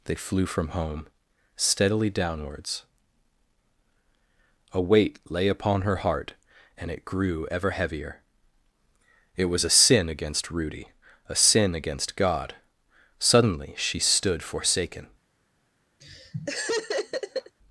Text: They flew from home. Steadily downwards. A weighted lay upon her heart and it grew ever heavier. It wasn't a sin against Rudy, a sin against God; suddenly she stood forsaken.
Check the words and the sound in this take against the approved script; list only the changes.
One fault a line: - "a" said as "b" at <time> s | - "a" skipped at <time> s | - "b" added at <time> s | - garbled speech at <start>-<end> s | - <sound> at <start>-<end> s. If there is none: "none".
- "weighted" said as "weight" at 4.8 s
- "wasn't" said as "was" at 9.5 s
- laugh at 16.0-17.6 s